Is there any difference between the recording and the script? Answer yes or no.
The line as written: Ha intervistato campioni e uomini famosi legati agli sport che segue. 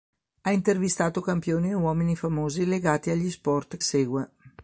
yes